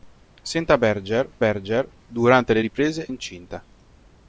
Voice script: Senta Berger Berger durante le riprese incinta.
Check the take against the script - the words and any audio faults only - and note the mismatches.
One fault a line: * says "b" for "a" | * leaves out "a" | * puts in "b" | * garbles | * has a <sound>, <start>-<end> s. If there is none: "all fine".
all fine